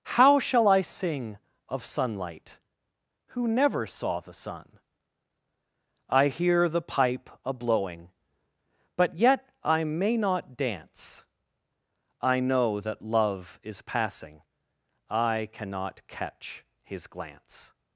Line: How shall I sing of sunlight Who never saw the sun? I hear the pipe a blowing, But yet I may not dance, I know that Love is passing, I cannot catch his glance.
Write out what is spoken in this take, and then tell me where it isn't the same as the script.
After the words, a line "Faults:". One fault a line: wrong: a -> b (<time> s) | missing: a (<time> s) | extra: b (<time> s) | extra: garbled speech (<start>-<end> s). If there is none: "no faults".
How shall I sing of sunlight Who never saw the sun? I hear the pipe a blowing, But yet I may not dance, I know that Love is passing, I cannot catch his glance.
Faults:
no faults